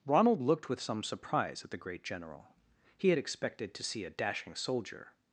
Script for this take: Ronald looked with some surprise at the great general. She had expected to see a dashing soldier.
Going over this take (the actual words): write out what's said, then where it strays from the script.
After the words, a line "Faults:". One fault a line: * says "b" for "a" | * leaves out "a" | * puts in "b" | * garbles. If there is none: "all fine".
Ronald looked with some surprise at the great general. He had expected to see a dashing soldier.
Faults:
* says "He" for "She"